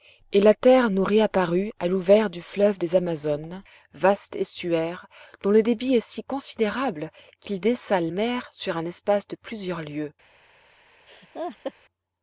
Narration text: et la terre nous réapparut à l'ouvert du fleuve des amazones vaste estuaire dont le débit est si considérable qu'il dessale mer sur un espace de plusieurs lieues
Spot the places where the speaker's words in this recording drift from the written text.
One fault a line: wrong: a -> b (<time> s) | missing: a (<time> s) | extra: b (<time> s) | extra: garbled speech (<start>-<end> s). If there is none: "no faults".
no faults